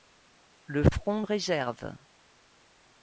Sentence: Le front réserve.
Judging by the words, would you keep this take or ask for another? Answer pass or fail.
pass